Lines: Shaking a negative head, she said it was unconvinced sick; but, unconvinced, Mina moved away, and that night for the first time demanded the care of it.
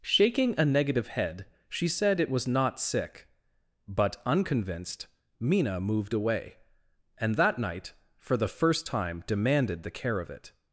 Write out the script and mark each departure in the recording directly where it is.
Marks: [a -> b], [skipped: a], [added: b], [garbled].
Shaking a negative head, she said it was [unconvinced -> not] sick; but, unconvinced, Mina moved away, and that night for the first time demanded the care of it.